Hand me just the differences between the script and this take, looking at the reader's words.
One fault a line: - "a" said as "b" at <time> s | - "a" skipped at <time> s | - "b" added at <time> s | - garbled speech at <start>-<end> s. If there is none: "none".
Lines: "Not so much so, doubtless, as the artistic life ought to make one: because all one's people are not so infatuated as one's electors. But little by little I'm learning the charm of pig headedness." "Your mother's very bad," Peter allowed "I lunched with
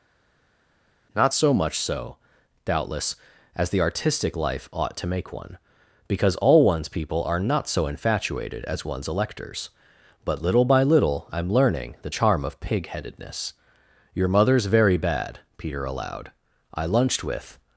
none